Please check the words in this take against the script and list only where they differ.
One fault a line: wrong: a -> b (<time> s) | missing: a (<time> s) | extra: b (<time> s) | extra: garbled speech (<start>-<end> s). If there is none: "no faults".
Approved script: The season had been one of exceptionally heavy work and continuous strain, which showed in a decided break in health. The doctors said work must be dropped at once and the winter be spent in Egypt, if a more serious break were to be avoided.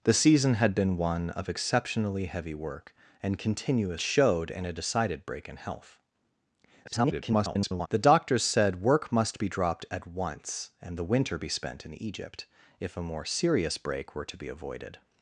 missing: strain which (4.0 s)
extra: garbled speech (6.8-7.9 s)